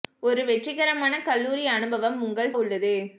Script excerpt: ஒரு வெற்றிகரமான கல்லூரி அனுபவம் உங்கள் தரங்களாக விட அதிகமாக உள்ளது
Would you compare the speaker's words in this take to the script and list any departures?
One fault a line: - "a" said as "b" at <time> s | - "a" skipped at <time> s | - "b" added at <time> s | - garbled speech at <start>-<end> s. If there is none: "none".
- "தரங்களாக விட அதிகமாக" skipped at 2.5 s